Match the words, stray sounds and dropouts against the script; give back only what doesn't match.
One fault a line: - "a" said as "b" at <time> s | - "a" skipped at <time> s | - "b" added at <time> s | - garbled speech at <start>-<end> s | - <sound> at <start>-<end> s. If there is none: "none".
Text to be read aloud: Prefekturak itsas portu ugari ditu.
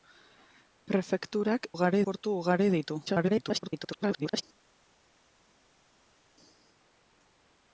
- "itsas" said as "ugari" at 1.7 s
- garbled speech at 3.1-4.4 s